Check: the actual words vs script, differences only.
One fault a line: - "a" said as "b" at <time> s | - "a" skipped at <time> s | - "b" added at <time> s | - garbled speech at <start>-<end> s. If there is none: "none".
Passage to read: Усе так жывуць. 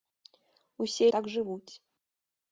none